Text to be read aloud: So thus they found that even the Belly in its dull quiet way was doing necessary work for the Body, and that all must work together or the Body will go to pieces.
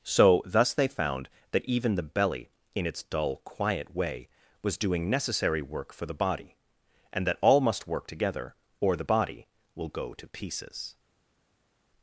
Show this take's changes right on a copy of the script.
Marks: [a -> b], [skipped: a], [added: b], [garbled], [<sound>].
So thus they found that even the Belly in its dull quiet way was doing necessary work for the Body, and that all must work together or the Body will go to pieces.